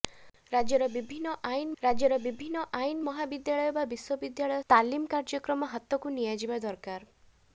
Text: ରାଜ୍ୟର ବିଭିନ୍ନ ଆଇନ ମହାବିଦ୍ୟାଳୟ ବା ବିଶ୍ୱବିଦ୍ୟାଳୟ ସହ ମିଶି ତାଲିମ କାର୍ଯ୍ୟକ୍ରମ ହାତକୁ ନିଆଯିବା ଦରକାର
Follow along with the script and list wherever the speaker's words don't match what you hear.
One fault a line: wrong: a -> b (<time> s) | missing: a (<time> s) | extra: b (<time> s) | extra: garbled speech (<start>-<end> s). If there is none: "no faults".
extra: ରାଜ୍ୟର ବିଭିନ୍ନ ଆଇନ (1.8 s)
missing: ସହ ମିଶି (4.7 s)